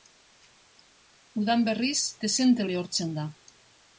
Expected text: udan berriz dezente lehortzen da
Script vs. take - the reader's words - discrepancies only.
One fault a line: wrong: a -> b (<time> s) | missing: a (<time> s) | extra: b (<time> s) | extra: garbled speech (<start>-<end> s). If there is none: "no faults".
no faults